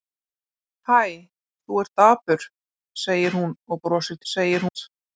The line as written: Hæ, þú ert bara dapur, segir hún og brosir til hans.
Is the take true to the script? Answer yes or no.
no